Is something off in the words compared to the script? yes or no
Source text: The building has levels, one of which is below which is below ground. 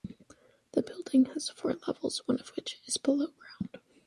yes